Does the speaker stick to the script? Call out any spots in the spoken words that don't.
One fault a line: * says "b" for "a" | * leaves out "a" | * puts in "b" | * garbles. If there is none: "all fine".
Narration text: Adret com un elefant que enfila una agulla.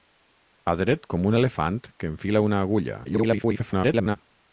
* garbles